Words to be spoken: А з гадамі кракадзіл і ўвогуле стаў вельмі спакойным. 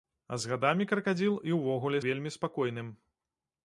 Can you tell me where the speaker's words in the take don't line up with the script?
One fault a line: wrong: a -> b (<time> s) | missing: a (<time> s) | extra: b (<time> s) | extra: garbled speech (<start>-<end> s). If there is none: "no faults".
missing: стаў (2.0 s)